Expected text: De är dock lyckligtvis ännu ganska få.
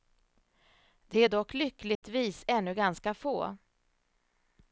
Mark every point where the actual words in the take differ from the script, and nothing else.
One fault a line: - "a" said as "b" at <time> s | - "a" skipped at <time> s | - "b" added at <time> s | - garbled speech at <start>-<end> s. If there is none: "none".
none